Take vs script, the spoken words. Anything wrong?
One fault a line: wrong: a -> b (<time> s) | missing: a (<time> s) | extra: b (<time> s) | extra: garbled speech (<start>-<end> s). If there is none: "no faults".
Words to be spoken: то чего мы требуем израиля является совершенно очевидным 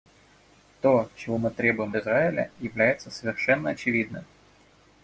no faults